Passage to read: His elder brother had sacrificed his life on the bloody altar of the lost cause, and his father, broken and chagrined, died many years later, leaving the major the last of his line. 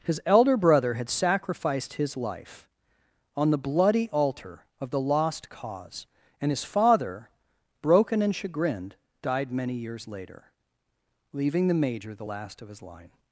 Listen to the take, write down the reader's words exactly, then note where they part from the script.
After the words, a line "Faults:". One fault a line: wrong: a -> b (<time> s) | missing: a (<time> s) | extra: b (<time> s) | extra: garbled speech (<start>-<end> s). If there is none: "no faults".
His elder brother had sacrificed his life on the bloody altar of the lost cause, and his father, broken and chagrined, died many years later, leaving the major the last of his line.
Faults:
no faults